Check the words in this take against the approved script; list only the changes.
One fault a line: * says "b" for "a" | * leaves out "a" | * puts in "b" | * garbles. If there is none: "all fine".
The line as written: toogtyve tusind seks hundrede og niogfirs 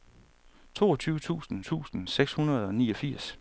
* puts in "tusind"